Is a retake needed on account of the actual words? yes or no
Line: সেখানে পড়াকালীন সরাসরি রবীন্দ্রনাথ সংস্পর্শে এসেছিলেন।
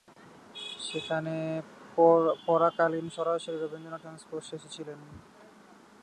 no